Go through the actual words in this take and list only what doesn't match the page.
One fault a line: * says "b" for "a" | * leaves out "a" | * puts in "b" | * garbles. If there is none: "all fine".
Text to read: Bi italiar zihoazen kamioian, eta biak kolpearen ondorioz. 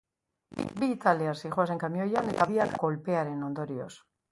all fine